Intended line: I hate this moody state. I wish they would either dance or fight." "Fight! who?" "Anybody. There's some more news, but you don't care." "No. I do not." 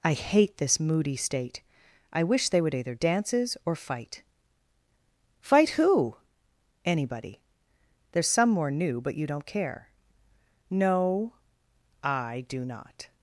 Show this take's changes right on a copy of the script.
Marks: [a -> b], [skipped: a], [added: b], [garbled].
I hate this moody state. I wish they would either [dance -> dances] or fight." "Fight! who?" "Anybody. There's some more [news, -> new] but you don't care." "No. I do not."